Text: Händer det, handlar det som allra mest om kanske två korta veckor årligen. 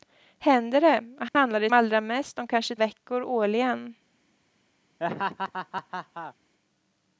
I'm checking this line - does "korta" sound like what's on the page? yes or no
no